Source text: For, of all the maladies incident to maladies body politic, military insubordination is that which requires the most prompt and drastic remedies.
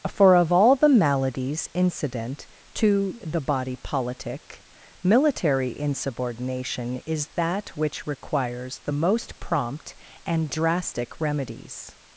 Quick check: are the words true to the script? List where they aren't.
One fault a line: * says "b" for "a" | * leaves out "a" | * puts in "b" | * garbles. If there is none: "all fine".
* says "the" for "maladies"